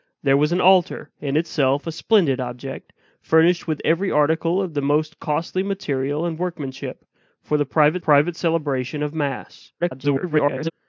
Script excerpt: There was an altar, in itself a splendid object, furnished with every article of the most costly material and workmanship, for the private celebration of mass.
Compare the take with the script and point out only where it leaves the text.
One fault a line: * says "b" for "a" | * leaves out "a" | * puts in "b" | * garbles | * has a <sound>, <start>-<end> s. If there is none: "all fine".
* puts in "private"
* garbles